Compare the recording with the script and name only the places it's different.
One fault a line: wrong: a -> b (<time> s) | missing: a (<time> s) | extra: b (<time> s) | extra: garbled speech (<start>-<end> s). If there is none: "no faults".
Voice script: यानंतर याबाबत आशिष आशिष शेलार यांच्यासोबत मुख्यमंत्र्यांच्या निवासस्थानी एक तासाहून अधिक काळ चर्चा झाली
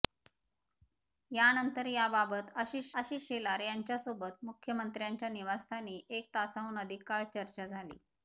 no faults